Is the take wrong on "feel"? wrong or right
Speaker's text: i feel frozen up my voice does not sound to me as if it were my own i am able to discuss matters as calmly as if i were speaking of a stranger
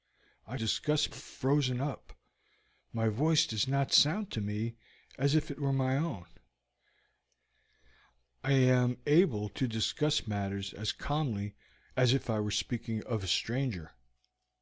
wrong